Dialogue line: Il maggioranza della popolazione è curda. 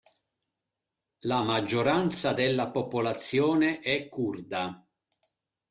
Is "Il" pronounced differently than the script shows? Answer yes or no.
yes